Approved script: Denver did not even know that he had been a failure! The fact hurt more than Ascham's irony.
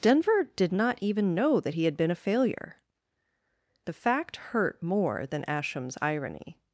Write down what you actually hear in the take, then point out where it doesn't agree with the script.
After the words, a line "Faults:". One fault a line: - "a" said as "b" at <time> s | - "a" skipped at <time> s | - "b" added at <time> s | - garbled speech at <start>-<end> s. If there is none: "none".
Denver did not even know that he had been a failure! The fact hurt more than Ascham's irony.
Faults:
none